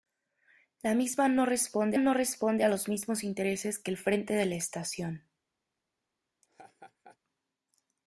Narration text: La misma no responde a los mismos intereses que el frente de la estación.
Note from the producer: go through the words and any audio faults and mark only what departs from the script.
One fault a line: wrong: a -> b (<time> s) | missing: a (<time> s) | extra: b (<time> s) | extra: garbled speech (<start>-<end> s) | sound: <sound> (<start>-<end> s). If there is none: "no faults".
extra: no responde (2.0 s)
sound: laugh (6.4-7.2 s)